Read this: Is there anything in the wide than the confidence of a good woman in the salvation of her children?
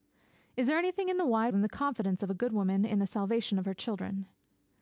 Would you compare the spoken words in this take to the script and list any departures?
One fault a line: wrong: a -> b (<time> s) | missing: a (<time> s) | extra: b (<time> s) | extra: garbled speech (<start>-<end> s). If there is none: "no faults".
no faults